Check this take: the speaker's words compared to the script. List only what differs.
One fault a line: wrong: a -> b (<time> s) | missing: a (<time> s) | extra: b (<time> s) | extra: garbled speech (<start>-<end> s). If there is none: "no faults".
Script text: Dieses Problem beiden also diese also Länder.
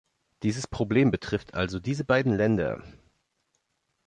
wrong: beiden -> betrifft (1.1 s)
wrong: also -> beiden (2.0 s)